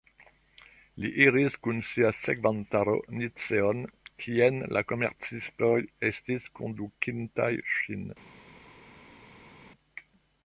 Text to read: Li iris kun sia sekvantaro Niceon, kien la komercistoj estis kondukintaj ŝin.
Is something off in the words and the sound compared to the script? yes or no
no